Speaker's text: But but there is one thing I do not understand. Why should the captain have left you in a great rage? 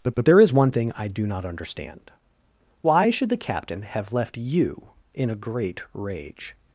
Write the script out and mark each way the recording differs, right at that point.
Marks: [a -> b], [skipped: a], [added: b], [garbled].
But but there is one thing I do not understand. Why should the captain have left you in a great rage?